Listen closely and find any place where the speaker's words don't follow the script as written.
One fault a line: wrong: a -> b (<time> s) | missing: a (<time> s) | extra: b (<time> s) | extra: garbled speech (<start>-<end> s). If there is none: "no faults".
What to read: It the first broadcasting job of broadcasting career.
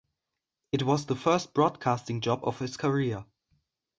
extra: was (0.8 s)
wrong: broadcasting -> his (2.6 s)